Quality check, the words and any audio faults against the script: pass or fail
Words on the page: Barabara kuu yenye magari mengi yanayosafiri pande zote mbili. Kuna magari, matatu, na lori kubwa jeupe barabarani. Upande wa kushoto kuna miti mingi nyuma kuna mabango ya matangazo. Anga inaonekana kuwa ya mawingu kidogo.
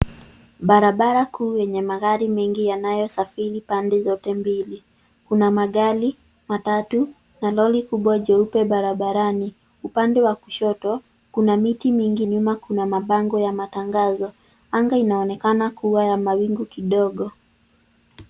pass